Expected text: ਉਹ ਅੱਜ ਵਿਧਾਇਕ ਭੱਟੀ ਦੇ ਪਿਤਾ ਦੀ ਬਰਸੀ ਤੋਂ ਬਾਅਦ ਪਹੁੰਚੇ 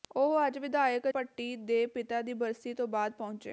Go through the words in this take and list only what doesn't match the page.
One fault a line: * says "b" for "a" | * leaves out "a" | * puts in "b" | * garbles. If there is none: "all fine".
all fine